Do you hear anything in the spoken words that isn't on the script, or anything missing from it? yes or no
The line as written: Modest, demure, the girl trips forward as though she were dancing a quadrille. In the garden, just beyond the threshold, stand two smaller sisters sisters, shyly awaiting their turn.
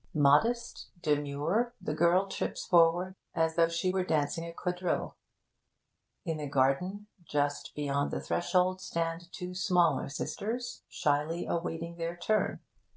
yes